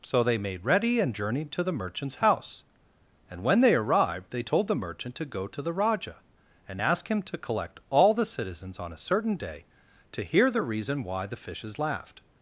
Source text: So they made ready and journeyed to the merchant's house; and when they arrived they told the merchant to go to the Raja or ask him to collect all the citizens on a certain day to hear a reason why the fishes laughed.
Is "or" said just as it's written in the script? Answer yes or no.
no